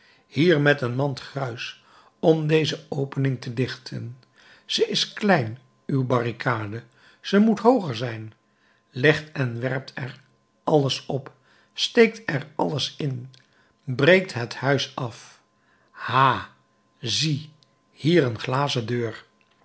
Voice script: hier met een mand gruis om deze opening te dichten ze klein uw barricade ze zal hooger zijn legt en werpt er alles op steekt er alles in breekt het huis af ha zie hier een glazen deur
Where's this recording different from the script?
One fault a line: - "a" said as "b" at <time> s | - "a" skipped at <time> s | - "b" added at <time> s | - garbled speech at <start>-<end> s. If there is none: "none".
- "is" added at 4.9 s
- "zal" said as "moet" at 7.4 s